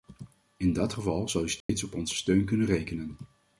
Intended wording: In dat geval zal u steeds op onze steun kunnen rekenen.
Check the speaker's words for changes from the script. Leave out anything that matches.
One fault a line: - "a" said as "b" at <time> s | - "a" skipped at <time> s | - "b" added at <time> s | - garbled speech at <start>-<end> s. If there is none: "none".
none